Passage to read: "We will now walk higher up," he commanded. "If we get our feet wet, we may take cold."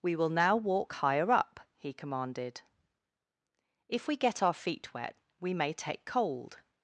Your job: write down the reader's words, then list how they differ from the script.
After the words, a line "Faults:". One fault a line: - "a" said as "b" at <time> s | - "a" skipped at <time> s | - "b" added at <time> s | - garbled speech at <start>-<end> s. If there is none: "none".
"We will now walk higher up," he commanded. "If we get our feet wet, we may take cold."
Faults:
none